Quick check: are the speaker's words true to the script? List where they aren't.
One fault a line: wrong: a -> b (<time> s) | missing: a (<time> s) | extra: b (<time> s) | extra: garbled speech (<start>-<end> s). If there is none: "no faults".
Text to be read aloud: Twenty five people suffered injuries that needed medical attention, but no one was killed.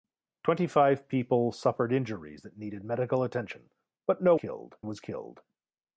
wrong: one -> killed (4.3 s)